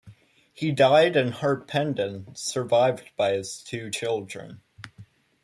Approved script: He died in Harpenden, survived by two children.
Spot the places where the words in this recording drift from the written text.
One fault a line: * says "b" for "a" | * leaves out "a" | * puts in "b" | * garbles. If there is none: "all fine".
* puts in "his"